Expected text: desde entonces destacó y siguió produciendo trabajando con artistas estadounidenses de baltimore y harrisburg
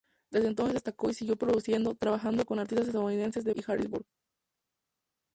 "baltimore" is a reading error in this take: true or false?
true